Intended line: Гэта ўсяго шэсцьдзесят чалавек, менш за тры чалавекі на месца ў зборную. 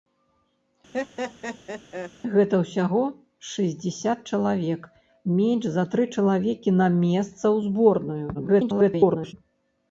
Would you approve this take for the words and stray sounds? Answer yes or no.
no